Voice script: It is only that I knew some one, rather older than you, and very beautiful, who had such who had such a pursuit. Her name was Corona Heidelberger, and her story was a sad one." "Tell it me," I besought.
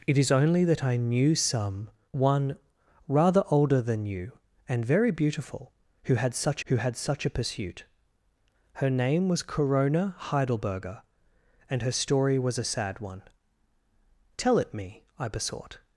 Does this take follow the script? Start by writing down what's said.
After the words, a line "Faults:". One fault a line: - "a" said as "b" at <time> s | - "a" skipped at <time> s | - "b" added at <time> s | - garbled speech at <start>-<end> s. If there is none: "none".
It is only that I knew some one, rather older than you, and very beautiful, who had such who had such a pursuit. Her name was Corona Heidelberger, and her story was a sad one." "Tell it me," I besought.
Faults:
none